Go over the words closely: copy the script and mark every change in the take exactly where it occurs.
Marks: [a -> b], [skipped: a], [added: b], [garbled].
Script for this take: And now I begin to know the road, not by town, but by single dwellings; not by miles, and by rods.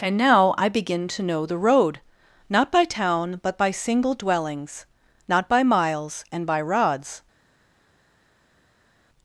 And now I begin to know the road, not by town, but by single dwellings; not by miles, and by rods.